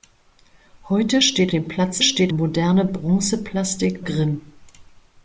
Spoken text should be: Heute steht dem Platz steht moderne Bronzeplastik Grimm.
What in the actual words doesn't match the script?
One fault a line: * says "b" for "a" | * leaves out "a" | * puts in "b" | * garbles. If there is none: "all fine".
all fine